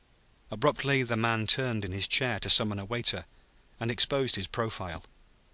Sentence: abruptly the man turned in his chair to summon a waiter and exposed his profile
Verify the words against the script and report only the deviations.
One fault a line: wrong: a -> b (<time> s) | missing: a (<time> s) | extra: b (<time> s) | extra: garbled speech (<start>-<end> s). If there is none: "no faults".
no faults